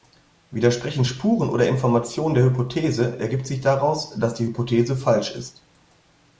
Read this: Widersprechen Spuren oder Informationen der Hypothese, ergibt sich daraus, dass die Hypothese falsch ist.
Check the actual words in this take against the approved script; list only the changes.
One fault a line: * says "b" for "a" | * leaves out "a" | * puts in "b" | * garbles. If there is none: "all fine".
all fine